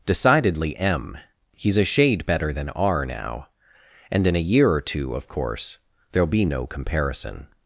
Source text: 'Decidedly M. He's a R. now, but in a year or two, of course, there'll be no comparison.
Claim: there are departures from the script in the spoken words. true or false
true